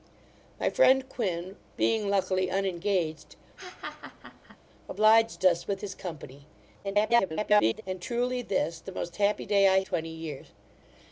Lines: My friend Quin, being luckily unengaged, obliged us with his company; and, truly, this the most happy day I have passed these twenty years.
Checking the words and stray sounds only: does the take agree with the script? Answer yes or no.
no